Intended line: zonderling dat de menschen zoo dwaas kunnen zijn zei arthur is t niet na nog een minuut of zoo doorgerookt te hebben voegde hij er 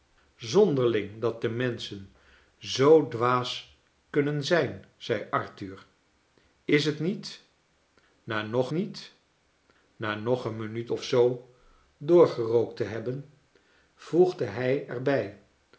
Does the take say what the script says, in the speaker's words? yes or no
no